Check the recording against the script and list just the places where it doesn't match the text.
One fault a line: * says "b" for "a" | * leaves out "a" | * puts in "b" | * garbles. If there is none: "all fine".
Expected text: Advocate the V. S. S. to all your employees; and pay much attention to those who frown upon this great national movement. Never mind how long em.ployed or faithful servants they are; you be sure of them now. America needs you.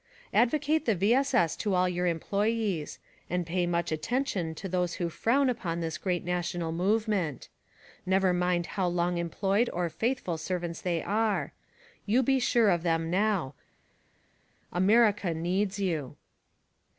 all fine